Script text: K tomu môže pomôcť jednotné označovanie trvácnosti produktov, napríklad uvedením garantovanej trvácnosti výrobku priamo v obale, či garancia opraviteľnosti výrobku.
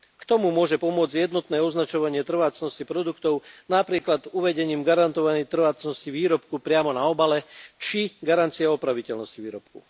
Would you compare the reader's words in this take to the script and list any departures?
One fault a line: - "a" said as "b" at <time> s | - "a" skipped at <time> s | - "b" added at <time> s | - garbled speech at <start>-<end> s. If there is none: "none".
- "v" said as "na" at 6.9 s